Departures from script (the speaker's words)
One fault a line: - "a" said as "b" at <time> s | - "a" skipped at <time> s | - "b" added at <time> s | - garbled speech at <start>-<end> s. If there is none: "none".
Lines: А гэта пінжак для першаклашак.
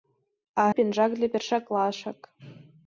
- "гэта" skipped at 0.6 s